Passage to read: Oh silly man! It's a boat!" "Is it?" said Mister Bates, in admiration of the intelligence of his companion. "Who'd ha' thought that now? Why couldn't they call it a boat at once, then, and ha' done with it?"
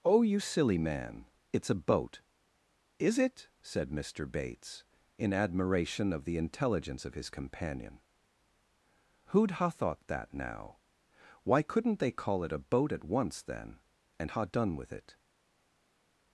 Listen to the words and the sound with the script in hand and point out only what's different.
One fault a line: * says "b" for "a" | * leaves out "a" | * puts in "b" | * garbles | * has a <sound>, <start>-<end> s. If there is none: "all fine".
* puts in "you"